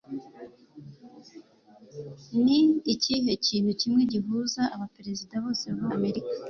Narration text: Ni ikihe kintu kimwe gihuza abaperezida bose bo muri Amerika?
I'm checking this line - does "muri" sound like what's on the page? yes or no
no